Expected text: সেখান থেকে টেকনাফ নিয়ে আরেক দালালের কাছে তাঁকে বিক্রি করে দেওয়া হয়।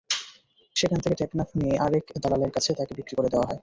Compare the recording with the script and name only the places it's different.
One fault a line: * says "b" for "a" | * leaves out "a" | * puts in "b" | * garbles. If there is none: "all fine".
all fine